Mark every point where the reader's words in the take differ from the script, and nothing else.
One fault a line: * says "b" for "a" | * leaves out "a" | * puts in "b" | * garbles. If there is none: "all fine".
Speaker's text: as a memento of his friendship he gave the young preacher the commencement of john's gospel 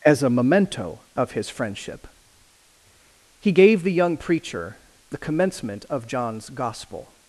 all fine